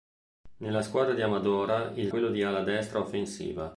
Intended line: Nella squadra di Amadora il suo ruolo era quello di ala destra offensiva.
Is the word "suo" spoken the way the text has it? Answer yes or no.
no